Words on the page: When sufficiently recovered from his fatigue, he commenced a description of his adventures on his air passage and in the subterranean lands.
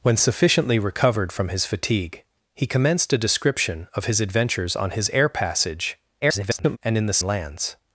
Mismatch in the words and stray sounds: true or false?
true